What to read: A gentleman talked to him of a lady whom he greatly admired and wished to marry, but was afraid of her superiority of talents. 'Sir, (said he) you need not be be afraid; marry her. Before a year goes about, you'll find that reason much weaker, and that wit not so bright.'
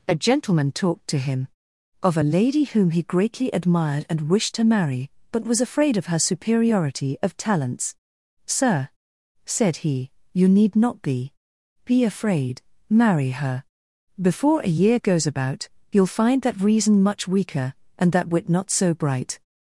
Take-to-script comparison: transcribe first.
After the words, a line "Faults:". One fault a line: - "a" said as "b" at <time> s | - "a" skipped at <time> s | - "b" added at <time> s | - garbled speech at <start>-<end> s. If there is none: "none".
A gentleman talked to him of a lady whom he greatly admired and wished to marry, but was afraid of her superiority of talents. 'Sir, (said he) you need not be be afraid; marry her. Before a year goes about, you'll find that reason much weaker, and that wit not so bright.'
Faults:
none